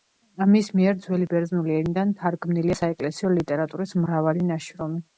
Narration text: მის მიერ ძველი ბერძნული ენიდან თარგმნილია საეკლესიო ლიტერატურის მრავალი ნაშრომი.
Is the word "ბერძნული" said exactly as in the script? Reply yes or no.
yes